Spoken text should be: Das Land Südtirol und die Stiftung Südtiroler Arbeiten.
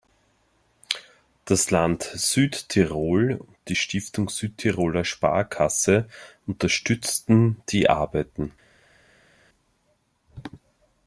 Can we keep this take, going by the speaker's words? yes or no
no